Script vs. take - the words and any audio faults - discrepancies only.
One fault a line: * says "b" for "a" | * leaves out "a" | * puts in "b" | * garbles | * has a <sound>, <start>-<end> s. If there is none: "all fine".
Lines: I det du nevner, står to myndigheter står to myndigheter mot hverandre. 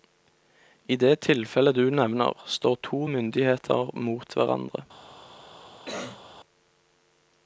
* puts in "tilfellet"
* leaves out "står to myndigheter"
* has a cough, 5.9-6.2 s